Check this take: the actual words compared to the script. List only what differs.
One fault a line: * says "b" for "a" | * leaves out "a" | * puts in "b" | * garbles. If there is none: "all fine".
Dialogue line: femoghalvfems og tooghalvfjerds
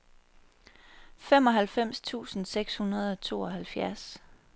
* puts in "tusind seks hundrede"